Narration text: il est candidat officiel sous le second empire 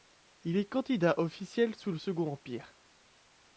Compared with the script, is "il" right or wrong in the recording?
right